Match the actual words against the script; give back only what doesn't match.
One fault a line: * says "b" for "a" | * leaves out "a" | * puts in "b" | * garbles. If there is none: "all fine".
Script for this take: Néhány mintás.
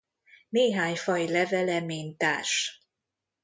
* puts in "faj levele"